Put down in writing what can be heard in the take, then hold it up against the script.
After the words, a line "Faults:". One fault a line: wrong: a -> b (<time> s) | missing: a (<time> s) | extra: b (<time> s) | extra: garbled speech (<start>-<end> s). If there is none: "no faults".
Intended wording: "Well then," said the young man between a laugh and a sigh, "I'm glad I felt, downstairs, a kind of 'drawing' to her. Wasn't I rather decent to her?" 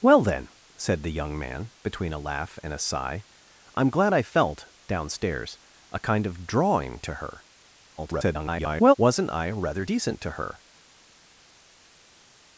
"Well then," said the young man between a laugh and a sigh, "I'm glad I felt, downstairs, a kind of 'drawing' to her. [garbled] Wasn't I rather decent to her?"
Faults:
extra: garbled speech (8.0-8.9 s)